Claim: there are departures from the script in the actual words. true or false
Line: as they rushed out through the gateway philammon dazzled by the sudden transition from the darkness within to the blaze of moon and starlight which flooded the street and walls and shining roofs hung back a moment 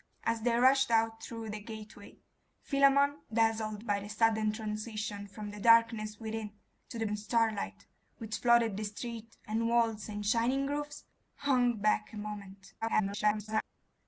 true